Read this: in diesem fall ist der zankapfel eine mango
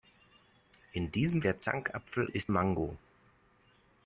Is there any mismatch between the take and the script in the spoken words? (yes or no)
yes